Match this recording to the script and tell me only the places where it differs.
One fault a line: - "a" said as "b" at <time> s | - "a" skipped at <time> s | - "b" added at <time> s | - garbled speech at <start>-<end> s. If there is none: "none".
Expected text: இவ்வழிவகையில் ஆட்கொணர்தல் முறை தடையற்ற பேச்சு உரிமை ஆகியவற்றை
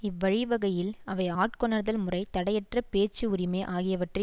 - "அவை" added at 1.1 s